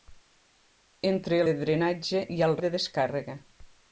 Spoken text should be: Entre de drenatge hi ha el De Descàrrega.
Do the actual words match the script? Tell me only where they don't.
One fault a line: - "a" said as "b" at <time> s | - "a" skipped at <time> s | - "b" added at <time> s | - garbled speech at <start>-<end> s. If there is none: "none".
none